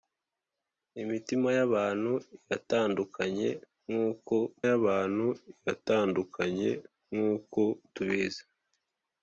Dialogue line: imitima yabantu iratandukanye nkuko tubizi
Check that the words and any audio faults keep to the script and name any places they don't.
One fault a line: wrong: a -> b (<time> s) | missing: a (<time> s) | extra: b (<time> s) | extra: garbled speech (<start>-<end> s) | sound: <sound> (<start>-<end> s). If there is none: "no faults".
extra: yabantu iratandukanye nkuko (4.7 s)